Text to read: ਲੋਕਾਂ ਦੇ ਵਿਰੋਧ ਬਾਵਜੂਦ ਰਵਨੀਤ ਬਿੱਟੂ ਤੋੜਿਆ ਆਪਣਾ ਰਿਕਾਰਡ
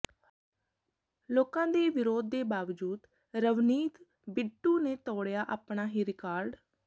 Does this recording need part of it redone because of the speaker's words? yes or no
yes